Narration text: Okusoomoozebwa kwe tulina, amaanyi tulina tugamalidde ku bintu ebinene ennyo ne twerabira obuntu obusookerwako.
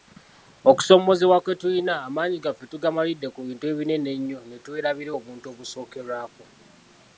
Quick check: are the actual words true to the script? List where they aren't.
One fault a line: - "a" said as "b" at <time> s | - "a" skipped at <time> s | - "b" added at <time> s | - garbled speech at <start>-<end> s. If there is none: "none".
- "tulina" said as "gaffe" at 2.5 s